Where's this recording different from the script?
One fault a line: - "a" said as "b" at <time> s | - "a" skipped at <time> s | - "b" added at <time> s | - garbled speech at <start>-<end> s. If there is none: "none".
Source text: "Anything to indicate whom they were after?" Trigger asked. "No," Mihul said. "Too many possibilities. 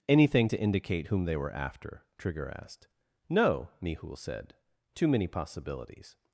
none